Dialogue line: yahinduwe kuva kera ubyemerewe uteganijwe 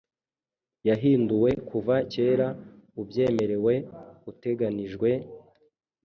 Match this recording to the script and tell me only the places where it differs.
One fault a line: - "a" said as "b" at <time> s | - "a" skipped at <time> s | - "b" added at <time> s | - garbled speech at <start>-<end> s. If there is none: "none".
none